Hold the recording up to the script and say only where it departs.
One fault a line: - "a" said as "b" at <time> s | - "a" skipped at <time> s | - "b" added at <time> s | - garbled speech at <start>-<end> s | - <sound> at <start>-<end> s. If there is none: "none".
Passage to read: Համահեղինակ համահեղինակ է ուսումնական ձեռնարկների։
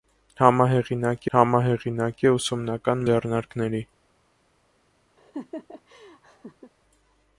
- laugh at 5.2-6.7 s